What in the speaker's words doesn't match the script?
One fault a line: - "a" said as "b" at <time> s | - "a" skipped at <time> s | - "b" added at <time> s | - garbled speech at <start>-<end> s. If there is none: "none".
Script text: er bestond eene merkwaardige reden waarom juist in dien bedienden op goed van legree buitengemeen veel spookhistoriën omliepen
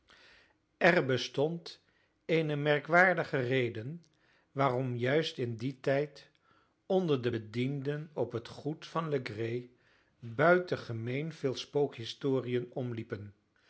- "tijd onder de" added at 5.8 s
- "het" added at 8.3 s